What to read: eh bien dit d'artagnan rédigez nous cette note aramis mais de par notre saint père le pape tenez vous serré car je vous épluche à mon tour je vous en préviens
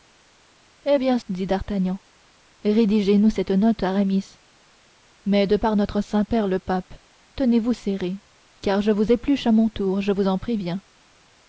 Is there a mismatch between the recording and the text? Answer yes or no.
no